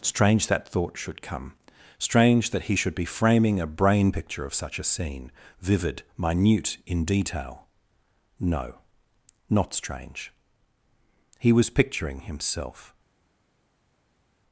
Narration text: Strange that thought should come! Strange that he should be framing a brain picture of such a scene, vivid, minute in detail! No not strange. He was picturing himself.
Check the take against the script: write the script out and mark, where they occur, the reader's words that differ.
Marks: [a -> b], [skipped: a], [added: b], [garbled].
Strange that thought should come! Strange that he should be framing a brain picture of such a scene, vivid, minute in detail! No not strange. He was picturing himself.